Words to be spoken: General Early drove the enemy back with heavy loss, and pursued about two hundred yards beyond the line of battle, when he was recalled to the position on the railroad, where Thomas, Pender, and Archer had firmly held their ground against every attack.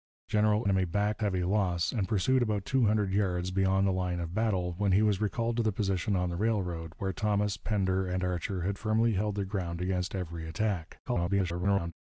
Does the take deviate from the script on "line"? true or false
false